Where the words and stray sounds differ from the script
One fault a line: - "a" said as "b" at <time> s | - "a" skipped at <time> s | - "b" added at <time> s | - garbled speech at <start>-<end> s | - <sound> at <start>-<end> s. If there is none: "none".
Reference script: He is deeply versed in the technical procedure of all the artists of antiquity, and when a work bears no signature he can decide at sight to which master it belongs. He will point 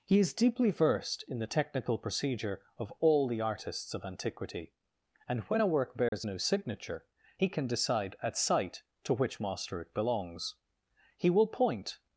- dropout at 6.1-6.1 s